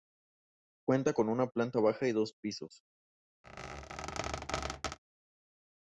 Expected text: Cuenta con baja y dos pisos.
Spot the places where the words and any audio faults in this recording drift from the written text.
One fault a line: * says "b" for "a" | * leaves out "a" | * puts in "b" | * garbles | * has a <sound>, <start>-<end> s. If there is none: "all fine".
* puts in "una planta"
* has a squeak, 3.4-5.0 s